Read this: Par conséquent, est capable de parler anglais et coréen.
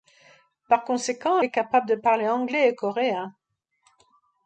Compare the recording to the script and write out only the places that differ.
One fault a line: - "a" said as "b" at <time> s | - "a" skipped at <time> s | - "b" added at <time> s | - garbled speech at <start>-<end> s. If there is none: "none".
none